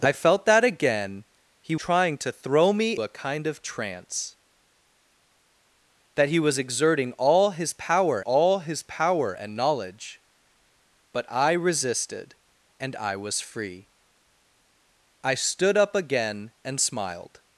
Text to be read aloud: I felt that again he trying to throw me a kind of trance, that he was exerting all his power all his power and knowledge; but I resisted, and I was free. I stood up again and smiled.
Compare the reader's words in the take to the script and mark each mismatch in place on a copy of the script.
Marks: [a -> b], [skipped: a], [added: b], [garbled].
I felt that again he trying to throw me a kind of trance, that he was exerting all his power all his power and knowledge; but I resisted, and I was free. I stood up again and smiled.